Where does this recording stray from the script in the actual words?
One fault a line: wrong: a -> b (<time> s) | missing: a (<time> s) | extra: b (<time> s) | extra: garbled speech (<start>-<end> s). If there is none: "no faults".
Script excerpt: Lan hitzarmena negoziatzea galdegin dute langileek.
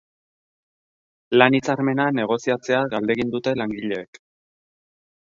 no faults